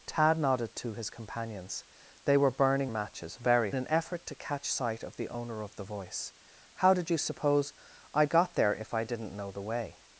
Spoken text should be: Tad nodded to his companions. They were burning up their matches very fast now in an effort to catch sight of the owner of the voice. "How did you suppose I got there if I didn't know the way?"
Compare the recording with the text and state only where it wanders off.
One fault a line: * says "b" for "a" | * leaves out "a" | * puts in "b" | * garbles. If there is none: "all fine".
* leaves out "up their"
* leaves out "fast now in"